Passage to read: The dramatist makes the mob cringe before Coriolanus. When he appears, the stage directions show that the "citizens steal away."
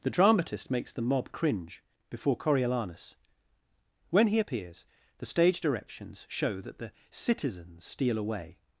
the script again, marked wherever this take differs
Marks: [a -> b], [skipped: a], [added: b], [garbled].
The dramatist makes the mob cringe before Coriolanus. When he appears, the stage directions show that the "citizens steal away."